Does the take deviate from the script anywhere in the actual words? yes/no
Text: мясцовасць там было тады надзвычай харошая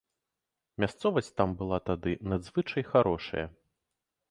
yes